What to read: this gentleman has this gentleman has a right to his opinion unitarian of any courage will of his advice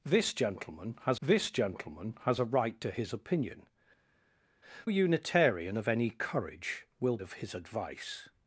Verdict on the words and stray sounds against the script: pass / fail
pass